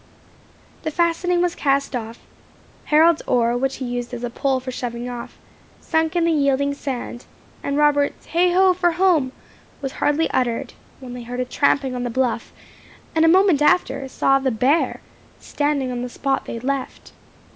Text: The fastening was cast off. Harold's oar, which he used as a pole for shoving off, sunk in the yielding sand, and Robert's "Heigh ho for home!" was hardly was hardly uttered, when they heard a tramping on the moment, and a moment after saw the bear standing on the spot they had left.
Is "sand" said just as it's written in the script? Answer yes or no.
yes